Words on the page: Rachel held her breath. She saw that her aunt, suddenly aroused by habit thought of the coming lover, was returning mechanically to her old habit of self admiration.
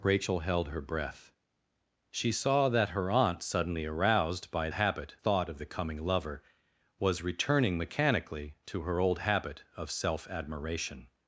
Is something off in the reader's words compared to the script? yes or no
no